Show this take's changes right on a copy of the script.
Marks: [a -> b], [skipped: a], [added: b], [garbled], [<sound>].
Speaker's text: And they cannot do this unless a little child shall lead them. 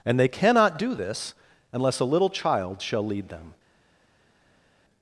And they cannot do this unless a little child shall lead them.